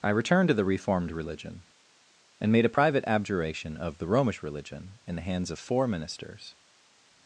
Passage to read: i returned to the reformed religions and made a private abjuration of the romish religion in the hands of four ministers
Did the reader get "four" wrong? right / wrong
right